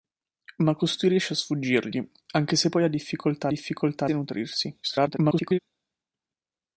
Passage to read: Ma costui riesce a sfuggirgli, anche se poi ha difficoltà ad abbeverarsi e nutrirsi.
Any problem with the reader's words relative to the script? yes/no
yes